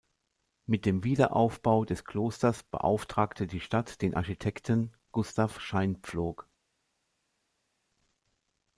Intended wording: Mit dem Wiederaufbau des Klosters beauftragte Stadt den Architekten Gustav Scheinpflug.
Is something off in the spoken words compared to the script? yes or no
yes